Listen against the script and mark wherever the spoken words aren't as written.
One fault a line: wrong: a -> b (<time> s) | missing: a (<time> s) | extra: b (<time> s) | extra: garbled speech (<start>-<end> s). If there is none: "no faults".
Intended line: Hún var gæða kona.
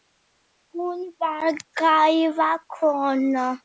no faults